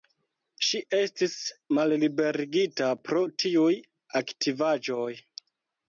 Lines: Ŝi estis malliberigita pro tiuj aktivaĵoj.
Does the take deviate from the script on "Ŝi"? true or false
false